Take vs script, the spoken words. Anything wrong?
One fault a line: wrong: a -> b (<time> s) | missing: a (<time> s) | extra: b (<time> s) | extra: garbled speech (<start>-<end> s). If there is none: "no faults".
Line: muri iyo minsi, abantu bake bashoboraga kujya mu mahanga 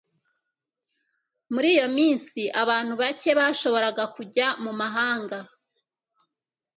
no faults